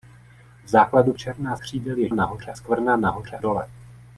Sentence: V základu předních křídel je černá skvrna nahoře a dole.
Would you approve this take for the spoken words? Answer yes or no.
no